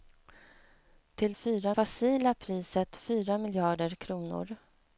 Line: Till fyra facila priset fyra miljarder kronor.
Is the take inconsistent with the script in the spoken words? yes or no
no